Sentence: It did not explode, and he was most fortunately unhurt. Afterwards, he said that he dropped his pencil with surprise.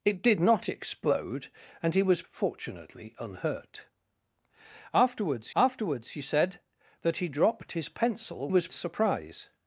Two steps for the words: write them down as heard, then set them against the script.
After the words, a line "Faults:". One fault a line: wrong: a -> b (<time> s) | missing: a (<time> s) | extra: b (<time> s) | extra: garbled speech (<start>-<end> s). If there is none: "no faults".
It did not explode, and he was fortunately unhurt. Afterwards afterwards, he said that he dropped his pencil was surprise.
Faults:
missing: most (2.3 s)
extra: afterwards (5.5 s)
wrong: with -> was (8.5 s)